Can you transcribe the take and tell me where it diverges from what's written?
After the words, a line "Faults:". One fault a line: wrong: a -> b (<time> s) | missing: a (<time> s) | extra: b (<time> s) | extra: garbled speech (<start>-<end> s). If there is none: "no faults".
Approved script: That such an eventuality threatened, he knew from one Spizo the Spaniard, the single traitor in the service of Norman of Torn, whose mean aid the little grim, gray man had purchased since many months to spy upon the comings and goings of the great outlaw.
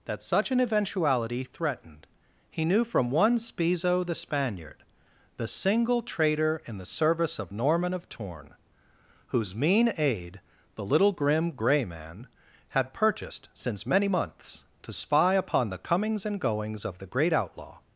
That such an eventuality threatened, he knew from one Spizo the Spaniard, the single traitor in the service of Norman of Torn, whose mean aid the little grim, gray man had purchased since many months to spy upon the comings and goings of the great outlaw.
Faults:
no faults